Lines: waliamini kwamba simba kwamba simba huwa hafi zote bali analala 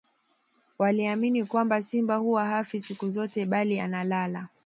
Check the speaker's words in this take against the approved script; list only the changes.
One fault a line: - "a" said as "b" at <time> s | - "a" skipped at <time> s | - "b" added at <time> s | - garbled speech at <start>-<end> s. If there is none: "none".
- "kwamba simba" skipped at 2.1 s
- "siku" added at 2.8 s